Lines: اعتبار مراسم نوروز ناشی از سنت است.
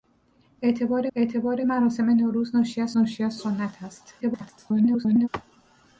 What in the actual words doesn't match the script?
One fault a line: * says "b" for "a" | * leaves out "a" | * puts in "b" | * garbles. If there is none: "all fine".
* puts in "اعتبار"
* puts in "ناشی از"
* garbles